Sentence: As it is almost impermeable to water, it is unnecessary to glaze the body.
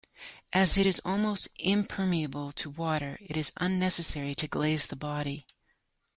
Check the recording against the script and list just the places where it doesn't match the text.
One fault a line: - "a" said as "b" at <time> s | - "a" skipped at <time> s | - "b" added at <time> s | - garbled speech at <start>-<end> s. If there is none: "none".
none